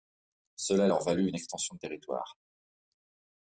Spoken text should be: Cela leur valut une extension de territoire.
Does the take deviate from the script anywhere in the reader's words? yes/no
no